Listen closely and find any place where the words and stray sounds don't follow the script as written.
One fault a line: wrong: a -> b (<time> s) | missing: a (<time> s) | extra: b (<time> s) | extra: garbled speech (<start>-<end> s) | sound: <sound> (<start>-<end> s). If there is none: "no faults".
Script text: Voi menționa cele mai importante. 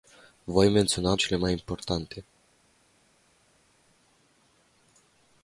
no faults